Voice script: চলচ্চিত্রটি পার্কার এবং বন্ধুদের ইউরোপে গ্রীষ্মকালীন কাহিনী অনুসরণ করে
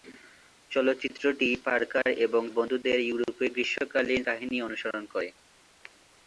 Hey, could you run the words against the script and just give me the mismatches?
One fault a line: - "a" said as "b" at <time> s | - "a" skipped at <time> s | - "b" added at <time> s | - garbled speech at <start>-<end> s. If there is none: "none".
none